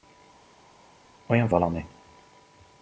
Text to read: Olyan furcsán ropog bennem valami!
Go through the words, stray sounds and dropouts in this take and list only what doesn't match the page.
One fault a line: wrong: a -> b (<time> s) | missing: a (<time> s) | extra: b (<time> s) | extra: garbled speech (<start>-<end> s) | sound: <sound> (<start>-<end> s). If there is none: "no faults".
missing: furcsán ropog bennem (1.5 s)